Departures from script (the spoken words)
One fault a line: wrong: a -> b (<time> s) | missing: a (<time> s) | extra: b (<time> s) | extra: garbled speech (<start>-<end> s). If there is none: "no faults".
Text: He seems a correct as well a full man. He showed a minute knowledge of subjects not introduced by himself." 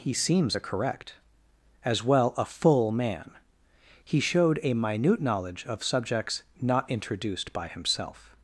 no faults